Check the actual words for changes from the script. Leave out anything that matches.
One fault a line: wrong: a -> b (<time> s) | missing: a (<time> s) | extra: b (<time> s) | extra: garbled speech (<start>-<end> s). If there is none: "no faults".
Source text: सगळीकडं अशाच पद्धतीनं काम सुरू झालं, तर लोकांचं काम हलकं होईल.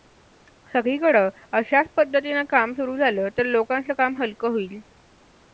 no faults